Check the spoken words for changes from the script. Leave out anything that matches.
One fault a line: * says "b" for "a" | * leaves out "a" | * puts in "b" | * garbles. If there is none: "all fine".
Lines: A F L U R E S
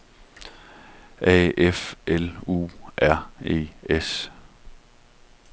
all fine